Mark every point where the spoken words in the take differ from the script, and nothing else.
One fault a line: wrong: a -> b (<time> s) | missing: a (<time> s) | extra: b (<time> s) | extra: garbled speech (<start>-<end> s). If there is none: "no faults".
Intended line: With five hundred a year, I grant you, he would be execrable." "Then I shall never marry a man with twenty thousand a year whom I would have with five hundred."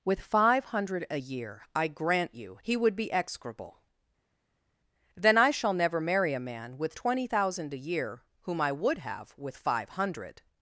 no faults